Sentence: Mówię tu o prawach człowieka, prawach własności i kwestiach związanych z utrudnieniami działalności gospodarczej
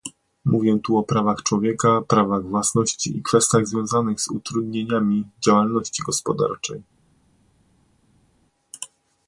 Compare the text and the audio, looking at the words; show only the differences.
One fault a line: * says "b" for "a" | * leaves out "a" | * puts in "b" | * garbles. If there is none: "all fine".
all fine